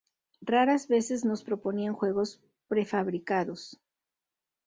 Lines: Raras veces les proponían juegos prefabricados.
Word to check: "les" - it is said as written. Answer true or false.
false